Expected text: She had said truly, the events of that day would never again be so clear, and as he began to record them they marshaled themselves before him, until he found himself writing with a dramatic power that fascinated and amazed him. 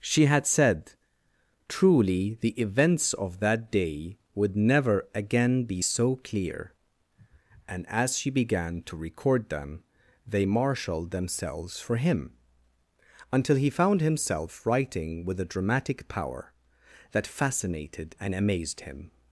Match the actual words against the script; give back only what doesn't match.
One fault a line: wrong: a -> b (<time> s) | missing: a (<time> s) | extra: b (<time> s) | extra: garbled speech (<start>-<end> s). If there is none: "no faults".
wrong: he -> she (8.2 s)
wrong: before -> for (11.8 s)